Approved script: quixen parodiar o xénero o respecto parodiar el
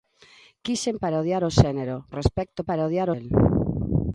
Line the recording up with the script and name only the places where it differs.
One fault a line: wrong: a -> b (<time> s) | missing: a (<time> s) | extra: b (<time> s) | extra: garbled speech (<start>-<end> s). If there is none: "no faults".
no faults